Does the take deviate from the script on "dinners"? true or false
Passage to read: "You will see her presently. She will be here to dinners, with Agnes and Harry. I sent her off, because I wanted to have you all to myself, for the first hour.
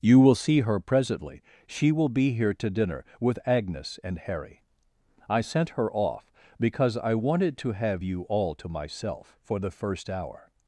true